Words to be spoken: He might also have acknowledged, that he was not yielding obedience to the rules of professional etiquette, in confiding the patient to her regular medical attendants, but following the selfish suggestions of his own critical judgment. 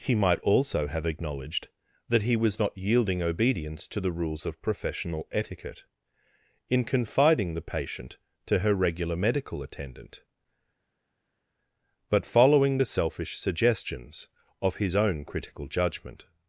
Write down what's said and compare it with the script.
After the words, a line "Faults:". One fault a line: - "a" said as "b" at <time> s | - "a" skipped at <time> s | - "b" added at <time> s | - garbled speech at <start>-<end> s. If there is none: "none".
He might also have acknowledged, that he was not yielding obedience to the rules of professional etiquette, in confiding the patient to her regular medical attendant, but following the selfish suggestions of his own critical judgment.
Faults:
- "attendants" said as "attendant" at 9.6 s